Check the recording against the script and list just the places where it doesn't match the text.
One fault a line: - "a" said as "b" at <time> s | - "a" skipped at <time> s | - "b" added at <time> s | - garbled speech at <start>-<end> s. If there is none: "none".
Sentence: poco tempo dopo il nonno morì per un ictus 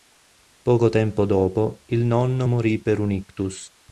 none